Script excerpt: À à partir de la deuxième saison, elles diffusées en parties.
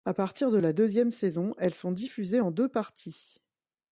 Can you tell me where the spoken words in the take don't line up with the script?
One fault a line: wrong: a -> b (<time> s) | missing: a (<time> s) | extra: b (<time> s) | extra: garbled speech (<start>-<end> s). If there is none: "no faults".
missing: à (0.1 s)
extra: sont (1.7 s)
extra: deux (2.5 s)